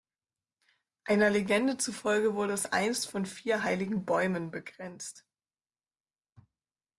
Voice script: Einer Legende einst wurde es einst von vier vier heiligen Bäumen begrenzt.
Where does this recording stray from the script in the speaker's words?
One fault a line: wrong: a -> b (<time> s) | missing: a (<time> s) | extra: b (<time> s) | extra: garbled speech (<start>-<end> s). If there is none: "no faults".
wrong: einst -> zufolge (1.8 s)
missing: vier (3.7 s)